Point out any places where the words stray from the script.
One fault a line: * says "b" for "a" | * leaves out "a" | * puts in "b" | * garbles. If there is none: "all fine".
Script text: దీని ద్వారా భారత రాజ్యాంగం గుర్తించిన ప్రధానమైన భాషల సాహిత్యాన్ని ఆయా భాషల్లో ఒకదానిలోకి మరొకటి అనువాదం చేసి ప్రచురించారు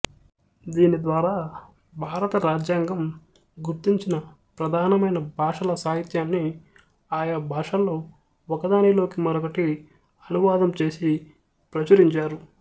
all fine